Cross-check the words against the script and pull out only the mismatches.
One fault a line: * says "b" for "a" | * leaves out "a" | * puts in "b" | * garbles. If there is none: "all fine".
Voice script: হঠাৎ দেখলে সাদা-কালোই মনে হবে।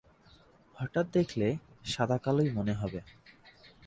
all fine